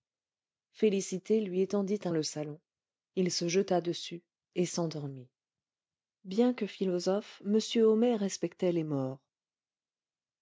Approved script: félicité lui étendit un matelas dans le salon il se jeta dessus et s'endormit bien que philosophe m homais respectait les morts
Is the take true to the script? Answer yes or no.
no